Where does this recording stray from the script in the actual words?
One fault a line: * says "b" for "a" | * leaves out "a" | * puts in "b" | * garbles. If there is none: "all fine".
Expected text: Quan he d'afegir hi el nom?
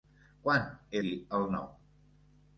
* leaves out "d'afegir"